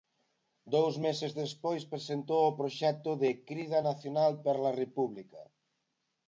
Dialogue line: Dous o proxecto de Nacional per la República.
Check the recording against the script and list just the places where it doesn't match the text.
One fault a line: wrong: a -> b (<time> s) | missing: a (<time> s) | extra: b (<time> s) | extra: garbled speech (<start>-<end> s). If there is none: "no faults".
extra: meses despois presentou (1.1 s)
extra: Crida (3.5 s)